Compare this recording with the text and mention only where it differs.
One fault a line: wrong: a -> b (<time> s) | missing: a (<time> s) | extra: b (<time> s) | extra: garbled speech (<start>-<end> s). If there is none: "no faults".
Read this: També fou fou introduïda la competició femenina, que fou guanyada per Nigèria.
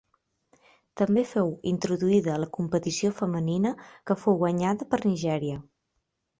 missing: fou (1.5 s)